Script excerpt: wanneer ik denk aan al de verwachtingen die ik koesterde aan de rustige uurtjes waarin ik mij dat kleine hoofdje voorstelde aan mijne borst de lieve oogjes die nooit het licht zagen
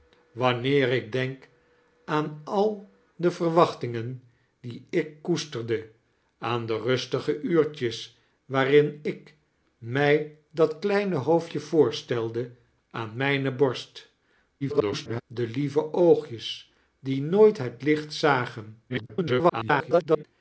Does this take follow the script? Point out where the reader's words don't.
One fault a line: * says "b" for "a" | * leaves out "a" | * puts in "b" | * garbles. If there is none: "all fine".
* garbles
* garbles